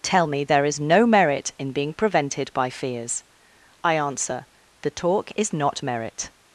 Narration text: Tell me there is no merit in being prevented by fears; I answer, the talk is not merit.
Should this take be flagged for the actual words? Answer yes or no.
no